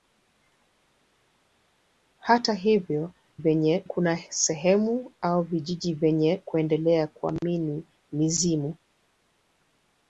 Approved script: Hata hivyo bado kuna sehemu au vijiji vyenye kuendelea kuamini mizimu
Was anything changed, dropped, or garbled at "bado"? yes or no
yes